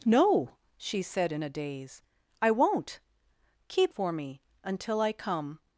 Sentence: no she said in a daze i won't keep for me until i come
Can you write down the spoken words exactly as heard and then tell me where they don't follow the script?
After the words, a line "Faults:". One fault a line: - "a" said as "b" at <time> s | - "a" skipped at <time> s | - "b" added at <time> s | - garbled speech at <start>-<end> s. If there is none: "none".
no she said in a daze i won't keep for me until i come
Faults:
none